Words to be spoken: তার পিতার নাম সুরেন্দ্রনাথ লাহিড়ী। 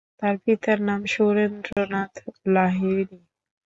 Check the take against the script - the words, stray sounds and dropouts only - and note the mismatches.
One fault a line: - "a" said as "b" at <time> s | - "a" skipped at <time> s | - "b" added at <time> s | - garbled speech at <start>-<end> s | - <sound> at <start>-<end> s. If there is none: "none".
- dropout at 1.7-1.8 s